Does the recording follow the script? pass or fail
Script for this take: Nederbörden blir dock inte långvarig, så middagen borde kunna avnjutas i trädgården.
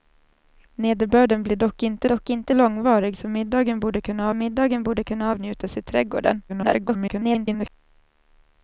fail